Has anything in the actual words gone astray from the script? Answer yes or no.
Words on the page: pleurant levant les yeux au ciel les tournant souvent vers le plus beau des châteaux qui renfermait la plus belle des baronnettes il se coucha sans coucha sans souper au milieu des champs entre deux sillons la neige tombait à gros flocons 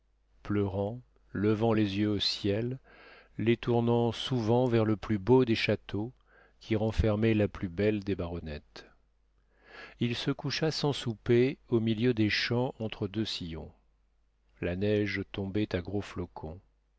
yes